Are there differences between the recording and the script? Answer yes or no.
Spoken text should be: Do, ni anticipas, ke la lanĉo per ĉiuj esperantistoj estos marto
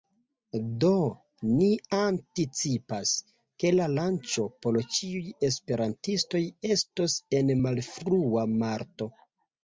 yes